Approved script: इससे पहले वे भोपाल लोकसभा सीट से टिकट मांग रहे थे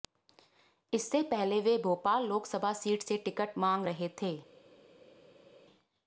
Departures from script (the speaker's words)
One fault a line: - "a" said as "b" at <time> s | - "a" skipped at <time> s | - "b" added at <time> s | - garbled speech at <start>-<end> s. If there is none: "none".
none